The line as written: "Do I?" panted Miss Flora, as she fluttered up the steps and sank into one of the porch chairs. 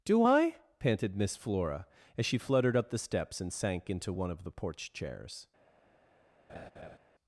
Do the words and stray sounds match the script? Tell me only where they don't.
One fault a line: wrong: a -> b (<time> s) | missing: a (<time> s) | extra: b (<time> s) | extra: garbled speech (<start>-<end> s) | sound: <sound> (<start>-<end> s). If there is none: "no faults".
sound: laugh (6.5-7.0 s)